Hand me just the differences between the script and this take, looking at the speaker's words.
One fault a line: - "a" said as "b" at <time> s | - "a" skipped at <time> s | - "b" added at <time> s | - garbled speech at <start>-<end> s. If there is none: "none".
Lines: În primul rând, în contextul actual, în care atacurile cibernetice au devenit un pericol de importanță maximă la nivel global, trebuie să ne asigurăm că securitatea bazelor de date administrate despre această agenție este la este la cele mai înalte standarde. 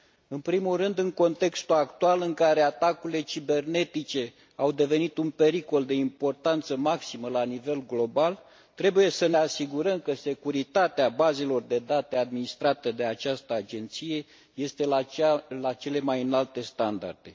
- "despre" said as "de" at 12.9 s
- "este la" skipped at 15.7 s